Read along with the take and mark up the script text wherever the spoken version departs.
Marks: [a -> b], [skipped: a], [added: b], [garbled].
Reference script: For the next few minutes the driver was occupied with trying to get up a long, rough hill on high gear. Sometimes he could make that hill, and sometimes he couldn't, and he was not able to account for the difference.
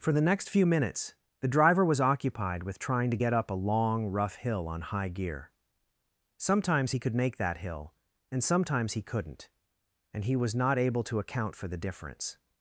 For the next few minutes the driver was occupied with trying to get up a long, rough hill on high gear. Sometimes he could make that hill, and sometimes he couldn't, and he was not able to account for the difference.